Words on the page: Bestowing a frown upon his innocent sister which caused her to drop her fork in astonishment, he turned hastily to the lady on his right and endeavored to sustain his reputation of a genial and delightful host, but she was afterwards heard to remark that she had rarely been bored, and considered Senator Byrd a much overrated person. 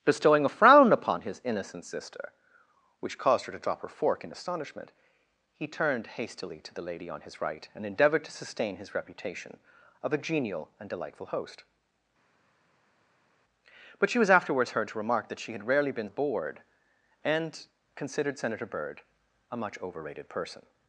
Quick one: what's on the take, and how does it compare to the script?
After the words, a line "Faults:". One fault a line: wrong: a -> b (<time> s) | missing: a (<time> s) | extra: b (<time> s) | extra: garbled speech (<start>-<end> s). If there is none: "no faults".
Bestowing a frown upon his innocent sister which caused her to drop her fork in astonishment, he turned hastily to the lady on his right and endeavored to sustain his reputation of a genial and delightful host, but she was afterwards heard to remark that she had rarely been bored, and considered Senator Byrd a much overrated person.
Faults:
no faults